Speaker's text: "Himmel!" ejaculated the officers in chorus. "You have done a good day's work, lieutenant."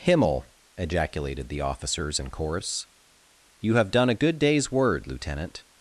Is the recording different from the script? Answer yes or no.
yes